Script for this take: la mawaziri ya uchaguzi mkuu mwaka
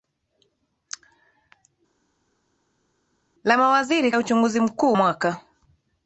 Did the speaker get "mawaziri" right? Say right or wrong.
right